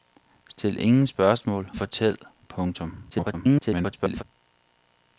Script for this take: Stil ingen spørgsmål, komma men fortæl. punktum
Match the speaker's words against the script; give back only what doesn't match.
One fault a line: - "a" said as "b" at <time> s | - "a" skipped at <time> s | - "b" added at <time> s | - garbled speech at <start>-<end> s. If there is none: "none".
- "komma men" skipped at 1.7 s
- garbled speech at 3.1-4.2 s